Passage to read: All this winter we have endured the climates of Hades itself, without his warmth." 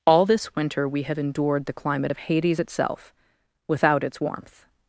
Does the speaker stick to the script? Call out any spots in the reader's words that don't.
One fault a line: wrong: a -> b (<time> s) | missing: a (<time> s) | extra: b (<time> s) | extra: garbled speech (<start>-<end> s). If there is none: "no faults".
wrong: climates -> climate (1.7 s)
wrong: his -> its (4.0 s)